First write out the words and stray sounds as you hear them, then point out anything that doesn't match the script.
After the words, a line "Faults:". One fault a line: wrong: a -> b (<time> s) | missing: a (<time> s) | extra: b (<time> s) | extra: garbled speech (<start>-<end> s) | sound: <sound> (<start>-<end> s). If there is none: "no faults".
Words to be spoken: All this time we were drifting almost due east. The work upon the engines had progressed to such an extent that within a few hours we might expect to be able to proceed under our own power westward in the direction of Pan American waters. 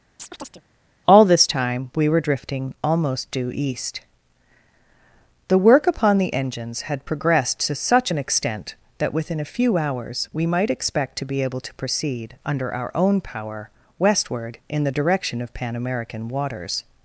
All this time we were drifting almost due east. The work upon the engines had progressed to such an extent that within a few hours we might expect to be able to proceed under our own power westward in the direction of Pan American waters.
Faults:
sound: chirp (0.2-0.6 s)